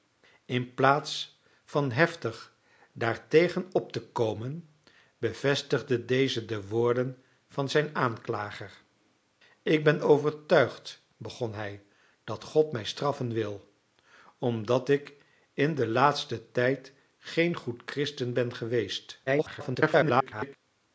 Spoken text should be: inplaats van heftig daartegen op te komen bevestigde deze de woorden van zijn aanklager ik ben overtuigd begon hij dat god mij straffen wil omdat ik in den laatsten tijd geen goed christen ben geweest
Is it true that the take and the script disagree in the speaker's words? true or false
true